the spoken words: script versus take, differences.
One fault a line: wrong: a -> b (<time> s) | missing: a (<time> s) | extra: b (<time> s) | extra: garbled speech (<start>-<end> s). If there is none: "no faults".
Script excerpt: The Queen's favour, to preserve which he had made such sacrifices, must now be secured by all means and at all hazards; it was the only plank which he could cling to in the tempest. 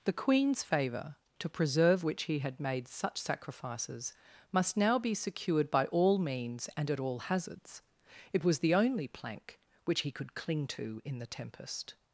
no faults